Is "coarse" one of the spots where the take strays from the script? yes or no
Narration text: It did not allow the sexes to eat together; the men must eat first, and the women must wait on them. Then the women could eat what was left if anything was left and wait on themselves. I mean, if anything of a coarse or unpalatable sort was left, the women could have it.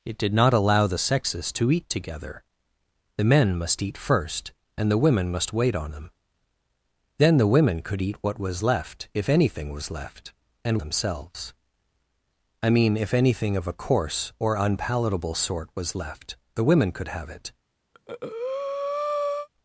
no